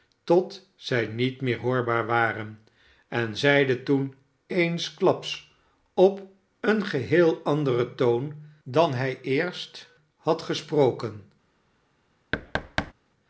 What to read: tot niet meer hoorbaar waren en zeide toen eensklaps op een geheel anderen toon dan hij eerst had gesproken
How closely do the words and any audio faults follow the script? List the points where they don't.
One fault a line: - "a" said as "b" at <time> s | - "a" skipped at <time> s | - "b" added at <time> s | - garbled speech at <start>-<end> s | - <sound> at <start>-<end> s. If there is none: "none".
- "zij" added at 0.8 s
- thud at 12.3-12.9 s